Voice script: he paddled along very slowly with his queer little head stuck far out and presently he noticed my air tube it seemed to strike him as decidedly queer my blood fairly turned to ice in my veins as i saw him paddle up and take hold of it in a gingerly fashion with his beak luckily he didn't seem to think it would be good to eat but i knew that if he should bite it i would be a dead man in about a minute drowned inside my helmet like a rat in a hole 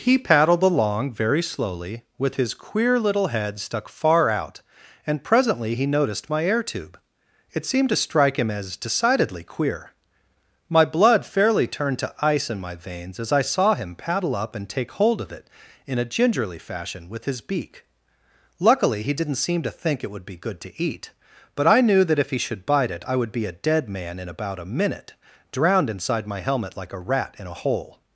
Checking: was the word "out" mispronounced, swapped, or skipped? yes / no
no